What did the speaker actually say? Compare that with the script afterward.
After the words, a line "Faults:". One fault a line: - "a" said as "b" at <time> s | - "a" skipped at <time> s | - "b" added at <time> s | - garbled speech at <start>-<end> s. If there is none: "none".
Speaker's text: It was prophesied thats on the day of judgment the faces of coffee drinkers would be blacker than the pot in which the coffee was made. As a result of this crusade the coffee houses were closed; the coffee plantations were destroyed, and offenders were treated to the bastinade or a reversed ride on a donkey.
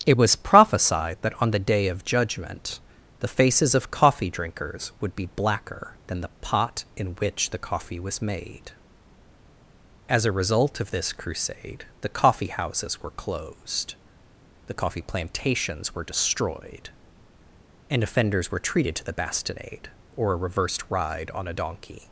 It was prophesied that on the day of judgment the faces of coffee drinkers would be blacker than the pot in which the coffee was made. As a result of this crusade the coffee houses were closed; the coffee plantations were destroyed, and offenders were treated to the bastinade or a reversed ride on a donkey.
Faults:
- "thats" said as "that" at 1.2 s